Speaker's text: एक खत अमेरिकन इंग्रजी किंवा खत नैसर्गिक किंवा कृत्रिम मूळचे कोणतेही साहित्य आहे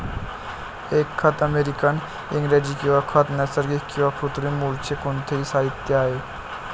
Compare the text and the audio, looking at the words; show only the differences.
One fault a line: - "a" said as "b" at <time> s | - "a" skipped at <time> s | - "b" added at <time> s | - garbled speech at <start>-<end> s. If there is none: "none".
none